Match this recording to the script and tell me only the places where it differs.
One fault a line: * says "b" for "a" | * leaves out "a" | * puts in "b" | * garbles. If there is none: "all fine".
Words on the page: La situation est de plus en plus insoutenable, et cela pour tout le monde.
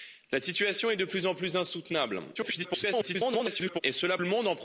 * garbles
* leaves out "pour tout"